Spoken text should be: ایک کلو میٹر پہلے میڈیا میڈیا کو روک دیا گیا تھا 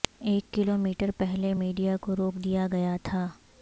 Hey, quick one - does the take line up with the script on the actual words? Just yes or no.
no